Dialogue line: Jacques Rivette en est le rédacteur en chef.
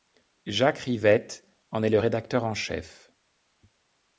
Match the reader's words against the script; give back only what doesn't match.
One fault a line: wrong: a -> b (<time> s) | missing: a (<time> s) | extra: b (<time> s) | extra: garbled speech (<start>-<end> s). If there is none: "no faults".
no faults